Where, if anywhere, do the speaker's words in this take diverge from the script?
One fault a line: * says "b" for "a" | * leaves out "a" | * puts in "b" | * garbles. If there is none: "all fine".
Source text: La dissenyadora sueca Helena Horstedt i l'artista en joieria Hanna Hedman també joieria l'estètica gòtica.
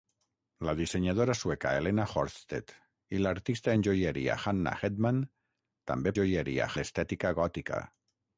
all fine